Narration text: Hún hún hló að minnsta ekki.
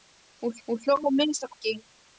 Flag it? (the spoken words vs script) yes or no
no